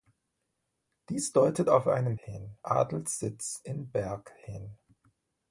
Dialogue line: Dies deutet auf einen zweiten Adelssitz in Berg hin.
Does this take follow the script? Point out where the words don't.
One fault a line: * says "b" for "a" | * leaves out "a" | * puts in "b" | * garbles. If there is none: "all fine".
* says "hin" for "zweiten"